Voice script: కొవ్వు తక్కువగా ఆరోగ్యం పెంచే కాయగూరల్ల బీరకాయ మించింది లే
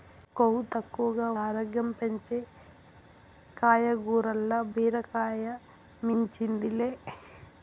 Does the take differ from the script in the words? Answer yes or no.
no